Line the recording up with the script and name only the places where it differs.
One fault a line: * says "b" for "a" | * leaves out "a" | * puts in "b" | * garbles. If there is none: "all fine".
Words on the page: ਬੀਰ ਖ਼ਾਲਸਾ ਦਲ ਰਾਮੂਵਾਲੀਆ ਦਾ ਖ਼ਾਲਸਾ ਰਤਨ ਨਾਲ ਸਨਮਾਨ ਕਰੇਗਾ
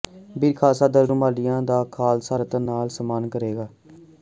all fine